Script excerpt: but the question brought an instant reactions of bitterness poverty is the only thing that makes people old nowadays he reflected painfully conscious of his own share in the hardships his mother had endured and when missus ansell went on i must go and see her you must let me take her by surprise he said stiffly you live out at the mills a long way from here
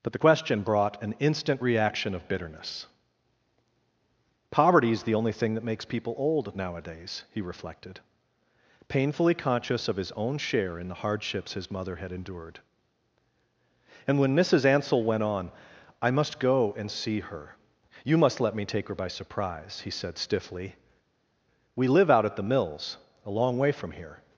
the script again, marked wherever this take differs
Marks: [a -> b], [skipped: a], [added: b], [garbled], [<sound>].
but the question brought an instant [reactions -> reaction] of bitterness poverty is the only thing that makes people old nowadays he reflected painfully conscious of his own share in the hardships his mother had endured and when missus ansell went on i must go and see her you must let me take her by surprise he said stiffly [you -> we] live out at the mills a long way from here